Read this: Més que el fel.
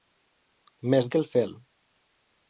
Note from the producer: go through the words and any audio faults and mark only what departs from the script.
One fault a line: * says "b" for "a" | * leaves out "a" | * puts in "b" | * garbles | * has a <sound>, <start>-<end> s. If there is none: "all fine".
all fine